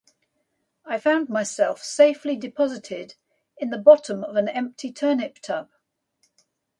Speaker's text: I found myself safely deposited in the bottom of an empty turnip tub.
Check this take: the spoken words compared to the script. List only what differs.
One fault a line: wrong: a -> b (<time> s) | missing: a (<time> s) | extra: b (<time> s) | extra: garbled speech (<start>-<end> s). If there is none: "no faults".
no faults